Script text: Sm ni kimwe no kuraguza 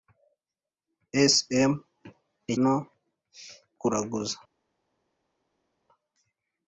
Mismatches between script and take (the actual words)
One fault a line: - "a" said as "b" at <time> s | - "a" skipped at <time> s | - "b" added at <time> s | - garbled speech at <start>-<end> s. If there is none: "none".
- "kimwe" skipped at 2.5 s